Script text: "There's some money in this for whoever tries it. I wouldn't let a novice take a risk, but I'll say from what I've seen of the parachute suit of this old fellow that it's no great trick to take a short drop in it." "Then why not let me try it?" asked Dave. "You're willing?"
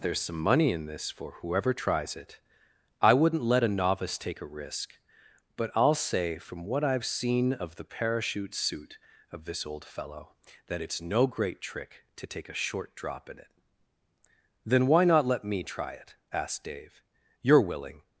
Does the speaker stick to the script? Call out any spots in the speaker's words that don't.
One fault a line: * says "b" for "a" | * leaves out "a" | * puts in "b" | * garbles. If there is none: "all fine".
all fine